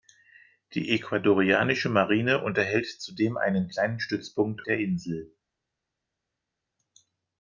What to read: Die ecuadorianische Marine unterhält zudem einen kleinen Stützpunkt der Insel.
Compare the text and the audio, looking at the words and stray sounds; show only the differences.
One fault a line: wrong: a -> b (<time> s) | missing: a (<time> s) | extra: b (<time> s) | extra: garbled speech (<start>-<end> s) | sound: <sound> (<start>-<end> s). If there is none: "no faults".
no faults